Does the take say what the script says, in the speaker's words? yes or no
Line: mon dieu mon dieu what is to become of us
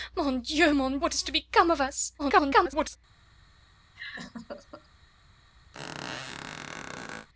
no